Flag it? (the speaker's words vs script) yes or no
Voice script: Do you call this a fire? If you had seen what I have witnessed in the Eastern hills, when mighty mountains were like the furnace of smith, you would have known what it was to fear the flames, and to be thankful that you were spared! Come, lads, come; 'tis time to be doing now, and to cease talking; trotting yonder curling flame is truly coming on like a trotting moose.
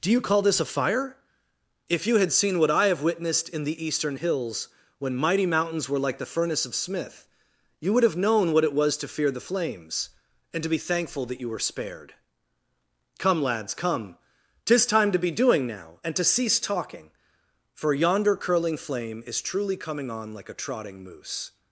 yes